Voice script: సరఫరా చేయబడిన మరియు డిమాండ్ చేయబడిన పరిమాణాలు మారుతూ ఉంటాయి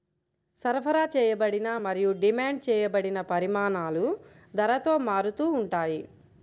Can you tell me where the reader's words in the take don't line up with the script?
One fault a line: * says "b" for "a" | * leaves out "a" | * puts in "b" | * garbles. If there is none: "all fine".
* puts in "ధరతో"